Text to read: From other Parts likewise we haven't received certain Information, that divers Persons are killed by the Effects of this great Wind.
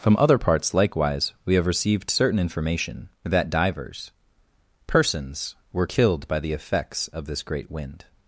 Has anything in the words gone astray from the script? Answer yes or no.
yes